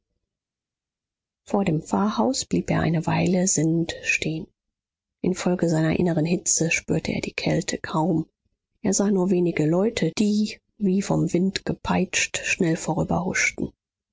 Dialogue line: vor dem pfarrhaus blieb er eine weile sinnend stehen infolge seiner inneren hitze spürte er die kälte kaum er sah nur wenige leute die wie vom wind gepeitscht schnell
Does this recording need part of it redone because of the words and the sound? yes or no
no